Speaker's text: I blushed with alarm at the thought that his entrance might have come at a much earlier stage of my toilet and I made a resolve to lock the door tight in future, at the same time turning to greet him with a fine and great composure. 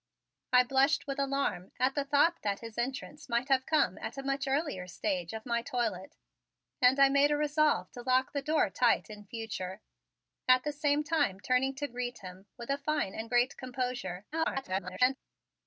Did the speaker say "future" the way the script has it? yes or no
yes